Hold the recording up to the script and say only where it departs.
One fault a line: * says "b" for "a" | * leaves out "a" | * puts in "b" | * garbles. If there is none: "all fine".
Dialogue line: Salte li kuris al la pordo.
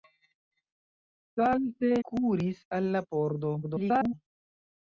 * leaves out "li"
* garbles